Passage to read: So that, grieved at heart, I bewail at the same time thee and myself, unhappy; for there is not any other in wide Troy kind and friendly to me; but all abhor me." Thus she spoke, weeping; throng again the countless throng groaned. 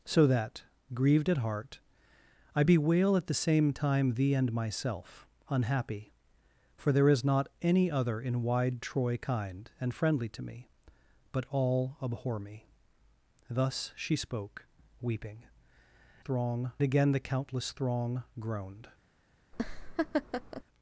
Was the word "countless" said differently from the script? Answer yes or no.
no